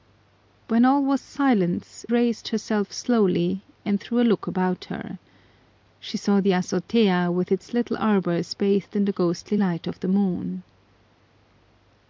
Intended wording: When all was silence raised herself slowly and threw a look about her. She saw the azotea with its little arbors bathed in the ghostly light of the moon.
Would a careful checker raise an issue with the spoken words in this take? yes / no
no